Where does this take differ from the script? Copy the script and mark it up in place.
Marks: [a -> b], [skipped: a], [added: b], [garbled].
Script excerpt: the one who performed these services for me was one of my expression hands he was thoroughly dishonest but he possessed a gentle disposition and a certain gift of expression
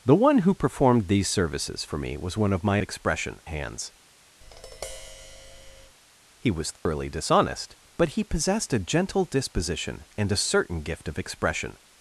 the one who performed these services for me was one of my expression hands he was thoroughly dishonest but he possessed a gentle disposition and a certain gift of expression